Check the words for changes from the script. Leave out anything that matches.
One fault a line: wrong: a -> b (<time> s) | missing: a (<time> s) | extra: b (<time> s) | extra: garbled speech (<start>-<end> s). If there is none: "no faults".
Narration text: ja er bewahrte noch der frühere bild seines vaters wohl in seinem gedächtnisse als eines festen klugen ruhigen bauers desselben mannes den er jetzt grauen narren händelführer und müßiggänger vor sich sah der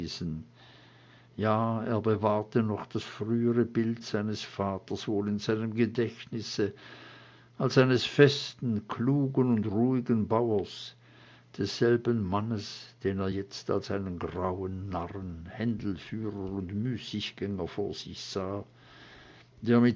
wrong: der -> das (2.9 s)
extra: und (9.5 s)
extra: als einen (13.7 s)